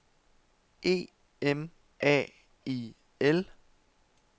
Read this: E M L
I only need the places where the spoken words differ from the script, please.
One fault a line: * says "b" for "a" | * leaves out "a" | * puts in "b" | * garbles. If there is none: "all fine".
* puts in "A I"